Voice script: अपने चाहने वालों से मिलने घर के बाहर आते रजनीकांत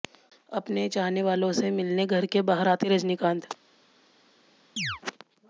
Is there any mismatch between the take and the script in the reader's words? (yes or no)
no